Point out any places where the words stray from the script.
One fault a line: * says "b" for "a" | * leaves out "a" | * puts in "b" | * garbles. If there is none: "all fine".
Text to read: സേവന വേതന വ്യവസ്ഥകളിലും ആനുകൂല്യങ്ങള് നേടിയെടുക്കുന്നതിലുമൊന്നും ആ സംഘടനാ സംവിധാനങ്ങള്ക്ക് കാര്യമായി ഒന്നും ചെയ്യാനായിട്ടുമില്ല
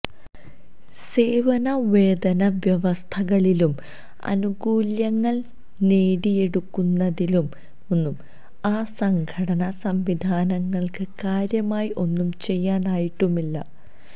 all fine